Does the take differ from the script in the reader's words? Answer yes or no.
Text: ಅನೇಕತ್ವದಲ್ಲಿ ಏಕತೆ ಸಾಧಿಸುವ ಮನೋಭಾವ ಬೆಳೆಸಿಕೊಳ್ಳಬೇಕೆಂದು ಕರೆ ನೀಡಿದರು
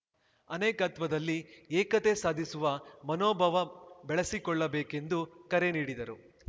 no